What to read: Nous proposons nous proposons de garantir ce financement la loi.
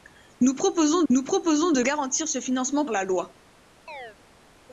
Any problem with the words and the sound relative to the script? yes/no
yes